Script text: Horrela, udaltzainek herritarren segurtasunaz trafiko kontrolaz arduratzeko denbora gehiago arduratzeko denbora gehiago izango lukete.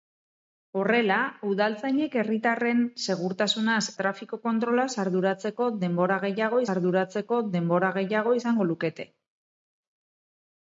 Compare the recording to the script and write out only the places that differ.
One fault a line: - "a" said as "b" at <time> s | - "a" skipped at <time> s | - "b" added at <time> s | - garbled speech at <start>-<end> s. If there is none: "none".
none